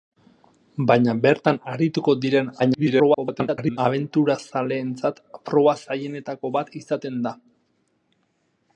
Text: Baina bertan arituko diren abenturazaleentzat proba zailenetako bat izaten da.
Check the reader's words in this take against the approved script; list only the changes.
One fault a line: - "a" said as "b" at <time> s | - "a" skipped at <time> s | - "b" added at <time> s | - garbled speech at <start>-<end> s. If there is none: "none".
- garbled speech at 2.6-3.8 s